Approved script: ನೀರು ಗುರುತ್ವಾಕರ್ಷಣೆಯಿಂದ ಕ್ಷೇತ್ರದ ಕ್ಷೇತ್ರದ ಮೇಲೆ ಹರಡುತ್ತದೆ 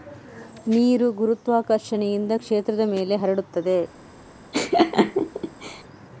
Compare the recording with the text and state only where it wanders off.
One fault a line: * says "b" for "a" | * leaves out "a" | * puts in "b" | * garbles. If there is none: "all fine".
* leaves out "ಕ್ಷೇತ್ರದ"